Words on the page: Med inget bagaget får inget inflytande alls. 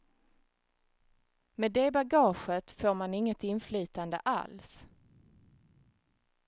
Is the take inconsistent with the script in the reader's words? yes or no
yes